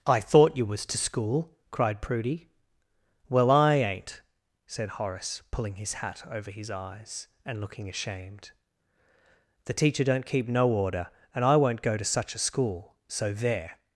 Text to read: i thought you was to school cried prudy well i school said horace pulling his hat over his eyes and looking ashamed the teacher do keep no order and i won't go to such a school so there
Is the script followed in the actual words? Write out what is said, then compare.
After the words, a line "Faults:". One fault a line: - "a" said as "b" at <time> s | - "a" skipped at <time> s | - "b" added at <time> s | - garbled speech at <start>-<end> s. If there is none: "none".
i thought you was to school cried prudy well i ain't said horace pulling his hat over his eyes and looking ashamed the teacher don't keep no order and i won't go to such a school so there
Faults:
- "school" said as "ain't" at 3.8 s
- "do" said as "don't" at 10.0 s